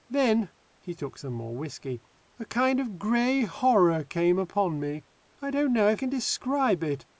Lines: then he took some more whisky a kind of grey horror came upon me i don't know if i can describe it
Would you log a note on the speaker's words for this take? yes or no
yes